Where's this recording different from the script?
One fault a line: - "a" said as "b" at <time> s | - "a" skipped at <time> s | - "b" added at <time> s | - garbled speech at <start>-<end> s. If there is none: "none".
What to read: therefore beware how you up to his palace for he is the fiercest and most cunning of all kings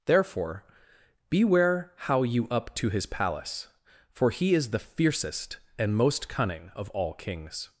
none